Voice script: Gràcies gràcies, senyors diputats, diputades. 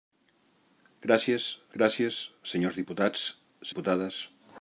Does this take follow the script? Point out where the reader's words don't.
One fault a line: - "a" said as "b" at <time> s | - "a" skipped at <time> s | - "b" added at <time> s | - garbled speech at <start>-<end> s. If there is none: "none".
none